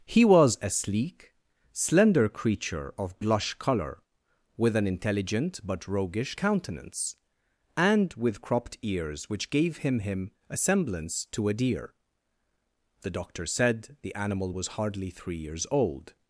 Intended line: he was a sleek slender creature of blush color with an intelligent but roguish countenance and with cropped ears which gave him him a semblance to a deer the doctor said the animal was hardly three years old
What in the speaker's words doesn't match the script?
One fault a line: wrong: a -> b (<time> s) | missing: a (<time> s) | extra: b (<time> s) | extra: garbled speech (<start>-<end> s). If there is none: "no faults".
no faults